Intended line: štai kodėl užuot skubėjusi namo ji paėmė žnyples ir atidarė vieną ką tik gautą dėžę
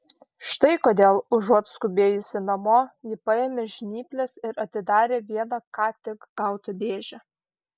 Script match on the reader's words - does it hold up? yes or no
yes